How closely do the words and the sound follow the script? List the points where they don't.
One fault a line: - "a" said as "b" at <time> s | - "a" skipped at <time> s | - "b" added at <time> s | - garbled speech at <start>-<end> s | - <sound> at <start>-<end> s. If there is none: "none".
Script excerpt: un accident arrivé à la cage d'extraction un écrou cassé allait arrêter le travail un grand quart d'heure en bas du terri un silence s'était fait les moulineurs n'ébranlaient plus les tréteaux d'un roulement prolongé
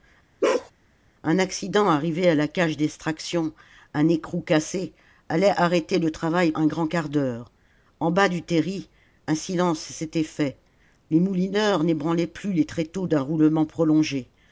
- bark at 0.4-0.7 s